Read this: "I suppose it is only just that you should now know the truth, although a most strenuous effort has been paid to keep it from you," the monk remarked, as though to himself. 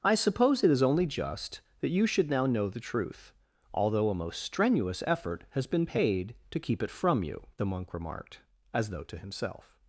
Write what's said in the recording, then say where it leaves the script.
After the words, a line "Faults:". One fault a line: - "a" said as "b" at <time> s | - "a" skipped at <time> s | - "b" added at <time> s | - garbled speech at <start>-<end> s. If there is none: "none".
"I suppose it is only just that you should now know the truth, although a most strenuous effort has been paid to keep it from you," the monk remarked, as though to himself.
Faults:
none